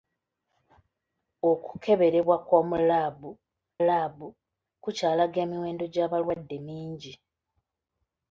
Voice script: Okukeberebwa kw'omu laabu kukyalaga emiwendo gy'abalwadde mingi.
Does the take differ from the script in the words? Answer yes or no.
yes